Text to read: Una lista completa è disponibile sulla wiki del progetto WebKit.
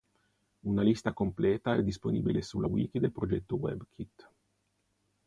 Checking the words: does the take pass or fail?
pass